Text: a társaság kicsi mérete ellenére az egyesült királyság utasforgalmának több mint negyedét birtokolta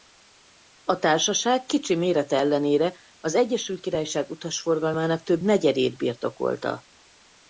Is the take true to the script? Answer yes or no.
no